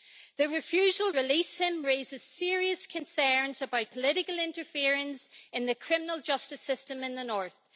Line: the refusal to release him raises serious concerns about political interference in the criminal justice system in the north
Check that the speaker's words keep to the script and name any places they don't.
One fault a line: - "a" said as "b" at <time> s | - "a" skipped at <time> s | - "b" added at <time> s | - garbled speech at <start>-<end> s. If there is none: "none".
- "to" skipped at 1.1 s